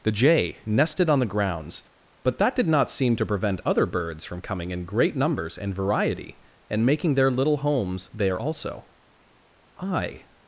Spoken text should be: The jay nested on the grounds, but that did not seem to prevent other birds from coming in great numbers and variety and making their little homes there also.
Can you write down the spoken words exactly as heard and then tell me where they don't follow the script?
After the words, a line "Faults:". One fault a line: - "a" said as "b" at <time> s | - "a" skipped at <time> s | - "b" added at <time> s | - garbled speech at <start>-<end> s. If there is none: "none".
The jay nested on the grounds, but that did not seem to prevent other birds from coming in great numbers and variety and making their little homes there also. I
Faults:
- "I" added at 9.8 s